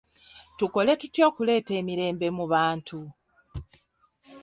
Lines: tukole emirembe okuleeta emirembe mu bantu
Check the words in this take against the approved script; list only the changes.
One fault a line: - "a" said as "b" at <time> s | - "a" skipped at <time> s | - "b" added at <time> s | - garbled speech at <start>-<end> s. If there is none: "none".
- "emirembe" said as "tutya" at 1.0 s